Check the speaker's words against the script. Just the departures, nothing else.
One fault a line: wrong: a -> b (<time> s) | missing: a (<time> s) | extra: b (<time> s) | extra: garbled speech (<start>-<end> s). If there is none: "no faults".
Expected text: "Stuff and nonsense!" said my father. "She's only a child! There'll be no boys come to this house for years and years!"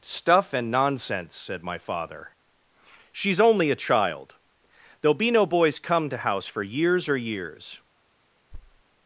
missing: this (6.2 s)
wrong: and -> or (7.1 s)